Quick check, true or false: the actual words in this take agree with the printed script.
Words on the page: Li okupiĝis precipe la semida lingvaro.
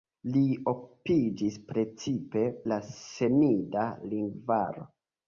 true